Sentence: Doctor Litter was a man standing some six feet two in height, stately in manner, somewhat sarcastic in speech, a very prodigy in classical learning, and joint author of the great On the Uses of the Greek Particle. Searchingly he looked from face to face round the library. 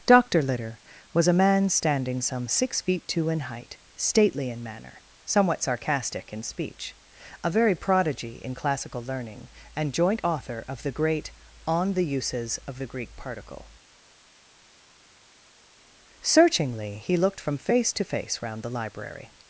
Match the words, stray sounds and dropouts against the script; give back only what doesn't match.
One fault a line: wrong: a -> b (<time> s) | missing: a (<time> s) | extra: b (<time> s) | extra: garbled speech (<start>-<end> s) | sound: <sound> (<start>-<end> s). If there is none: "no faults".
no faults